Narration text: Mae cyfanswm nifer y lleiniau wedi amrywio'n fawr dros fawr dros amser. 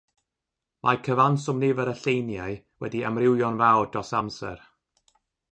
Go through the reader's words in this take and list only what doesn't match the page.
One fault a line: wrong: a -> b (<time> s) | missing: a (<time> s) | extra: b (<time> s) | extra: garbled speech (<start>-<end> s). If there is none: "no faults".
missing: fawr dros (4.1 s)